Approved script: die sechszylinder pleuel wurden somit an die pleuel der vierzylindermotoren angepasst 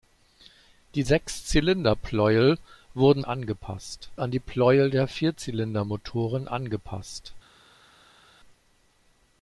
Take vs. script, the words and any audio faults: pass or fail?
fail